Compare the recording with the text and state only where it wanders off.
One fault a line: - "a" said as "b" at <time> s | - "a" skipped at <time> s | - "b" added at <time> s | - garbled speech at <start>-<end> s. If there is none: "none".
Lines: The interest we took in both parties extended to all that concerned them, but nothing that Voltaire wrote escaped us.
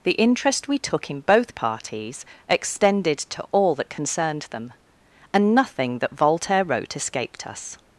- "but" said as "and" at 5.3 s